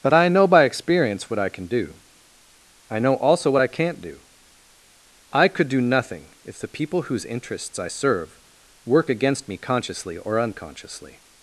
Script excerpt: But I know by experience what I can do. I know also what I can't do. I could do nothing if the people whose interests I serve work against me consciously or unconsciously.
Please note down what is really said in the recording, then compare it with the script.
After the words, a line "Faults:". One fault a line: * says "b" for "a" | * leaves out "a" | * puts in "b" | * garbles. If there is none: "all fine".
But I know by experience what I can do. I know also what I can't do. I could do nothing if the people whose interests I serve work against me consciously or unconsciously.
Faults:
all fine